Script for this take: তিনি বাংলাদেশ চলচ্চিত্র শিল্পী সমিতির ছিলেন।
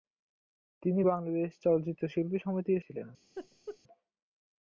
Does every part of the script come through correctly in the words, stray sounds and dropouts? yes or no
no